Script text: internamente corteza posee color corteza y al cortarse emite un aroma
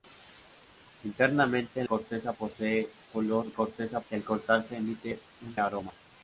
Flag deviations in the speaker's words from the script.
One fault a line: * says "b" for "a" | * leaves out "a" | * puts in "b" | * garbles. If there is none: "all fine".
all fine